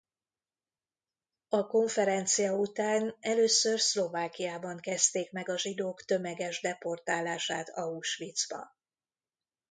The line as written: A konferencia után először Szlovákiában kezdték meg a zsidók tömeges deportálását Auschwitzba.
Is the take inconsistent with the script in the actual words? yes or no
no